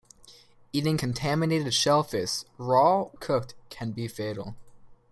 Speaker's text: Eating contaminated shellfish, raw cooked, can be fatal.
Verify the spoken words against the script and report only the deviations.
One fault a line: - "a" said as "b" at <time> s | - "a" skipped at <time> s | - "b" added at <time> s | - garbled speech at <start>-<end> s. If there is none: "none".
none